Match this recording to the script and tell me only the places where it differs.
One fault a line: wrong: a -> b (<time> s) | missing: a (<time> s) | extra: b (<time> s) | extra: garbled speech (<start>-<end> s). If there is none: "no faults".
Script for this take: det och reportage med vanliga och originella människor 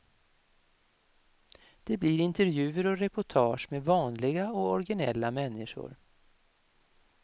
extra: blir intervjuer (2.0 s)